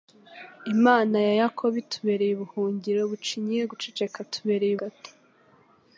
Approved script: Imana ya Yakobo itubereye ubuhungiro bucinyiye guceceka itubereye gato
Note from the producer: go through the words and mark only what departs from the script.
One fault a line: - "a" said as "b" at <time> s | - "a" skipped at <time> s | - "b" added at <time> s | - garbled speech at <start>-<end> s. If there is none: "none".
none